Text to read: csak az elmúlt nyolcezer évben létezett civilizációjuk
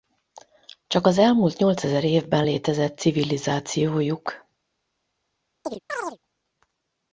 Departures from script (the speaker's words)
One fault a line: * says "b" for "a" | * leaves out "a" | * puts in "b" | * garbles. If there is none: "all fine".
all fine